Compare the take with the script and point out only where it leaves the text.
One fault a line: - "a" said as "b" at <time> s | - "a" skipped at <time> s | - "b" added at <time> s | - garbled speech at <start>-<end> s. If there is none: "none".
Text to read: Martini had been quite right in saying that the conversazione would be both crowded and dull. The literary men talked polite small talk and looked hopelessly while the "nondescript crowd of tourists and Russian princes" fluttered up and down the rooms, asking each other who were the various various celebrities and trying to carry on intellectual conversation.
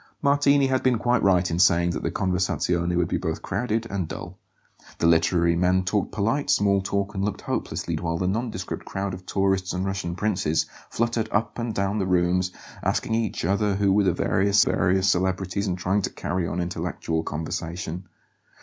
none